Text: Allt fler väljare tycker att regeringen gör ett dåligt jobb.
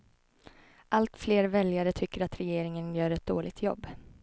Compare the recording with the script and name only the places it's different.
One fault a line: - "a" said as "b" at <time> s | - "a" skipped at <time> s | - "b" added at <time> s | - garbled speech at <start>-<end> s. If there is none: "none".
none